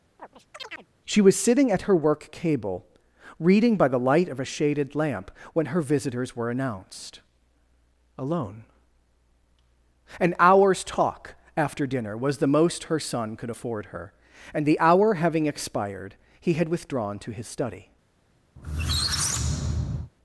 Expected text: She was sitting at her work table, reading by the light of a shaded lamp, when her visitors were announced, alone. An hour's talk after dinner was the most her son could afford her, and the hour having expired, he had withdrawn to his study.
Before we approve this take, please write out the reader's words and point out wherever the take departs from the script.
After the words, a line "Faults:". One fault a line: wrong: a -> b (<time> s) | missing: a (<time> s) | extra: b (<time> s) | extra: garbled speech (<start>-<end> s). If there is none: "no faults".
She was sitting at her work cable, reading by the light of a shaded lamp, when her visitors were announced, alone. An hour's talk after dinner was the most her son could afford her, and the hour having expired, he had withdrawn to his study.
Faults:
wrong: table -> cable (2.3 s)